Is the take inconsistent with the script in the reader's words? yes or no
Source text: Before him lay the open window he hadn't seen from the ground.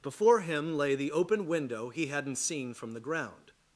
no